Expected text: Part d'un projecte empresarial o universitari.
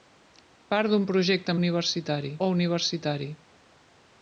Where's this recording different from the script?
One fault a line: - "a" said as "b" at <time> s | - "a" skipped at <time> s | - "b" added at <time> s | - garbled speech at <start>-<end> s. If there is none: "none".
- "empresarial" said as "universitari" at 1.6 s